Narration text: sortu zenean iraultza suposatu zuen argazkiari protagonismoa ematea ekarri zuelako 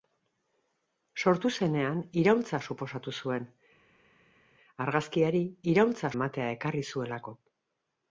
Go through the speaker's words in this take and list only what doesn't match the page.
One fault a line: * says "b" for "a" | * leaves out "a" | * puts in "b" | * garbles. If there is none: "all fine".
* says "iraultza" for "protagonismoa"